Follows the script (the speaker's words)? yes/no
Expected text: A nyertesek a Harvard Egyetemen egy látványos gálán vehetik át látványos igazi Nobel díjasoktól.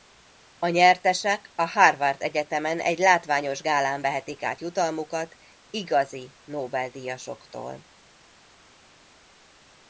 no